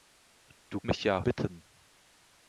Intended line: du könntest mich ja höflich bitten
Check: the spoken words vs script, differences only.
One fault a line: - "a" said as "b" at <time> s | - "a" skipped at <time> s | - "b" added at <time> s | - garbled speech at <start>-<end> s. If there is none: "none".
- "könntest" skipped at 0.8 s
- "höflich" skipped at 1.2 s